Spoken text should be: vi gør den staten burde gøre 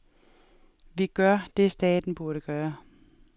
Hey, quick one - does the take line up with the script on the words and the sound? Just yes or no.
no